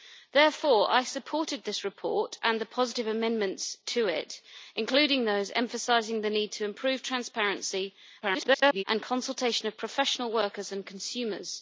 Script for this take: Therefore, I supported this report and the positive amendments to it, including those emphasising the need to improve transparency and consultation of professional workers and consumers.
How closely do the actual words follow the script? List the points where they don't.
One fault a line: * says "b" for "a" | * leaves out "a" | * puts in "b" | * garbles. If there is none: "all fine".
* garbles